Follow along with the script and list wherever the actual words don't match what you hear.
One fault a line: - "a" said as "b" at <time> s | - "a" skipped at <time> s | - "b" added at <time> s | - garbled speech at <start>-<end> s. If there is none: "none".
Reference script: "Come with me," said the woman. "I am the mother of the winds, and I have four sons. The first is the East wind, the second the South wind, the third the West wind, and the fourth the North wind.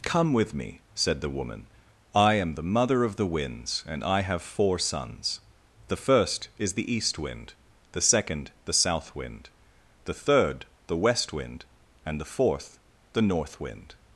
none